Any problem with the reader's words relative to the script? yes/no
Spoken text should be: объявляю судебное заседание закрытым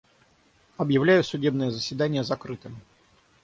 no